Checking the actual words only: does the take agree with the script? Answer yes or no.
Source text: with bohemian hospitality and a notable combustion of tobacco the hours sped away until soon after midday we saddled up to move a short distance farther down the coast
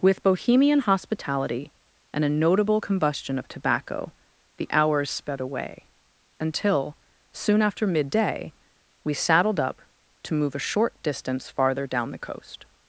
yes